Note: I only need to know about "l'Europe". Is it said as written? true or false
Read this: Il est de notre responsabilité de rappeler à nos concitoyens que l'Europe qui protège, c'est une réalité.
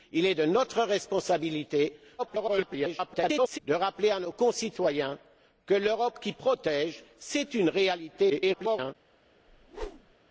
true